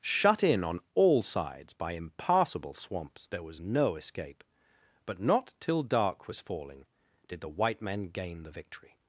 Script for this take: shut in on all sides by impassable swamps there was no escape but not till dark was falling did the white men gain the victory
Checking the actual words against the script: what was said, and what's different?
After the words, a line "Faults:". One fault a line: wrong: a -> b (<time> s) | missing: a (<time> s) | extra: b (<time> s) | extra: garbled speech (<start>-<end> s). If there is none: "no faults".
shut in on all sides by impassable swamps there was no escape but not till dark was falling did the white men gain the victory
Faults:
no faults